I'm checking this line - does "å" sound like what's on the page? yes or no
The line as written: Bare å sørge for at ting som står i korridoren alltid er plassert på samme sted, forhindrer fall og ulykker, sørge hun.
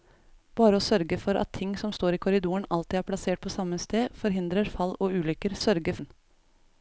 yes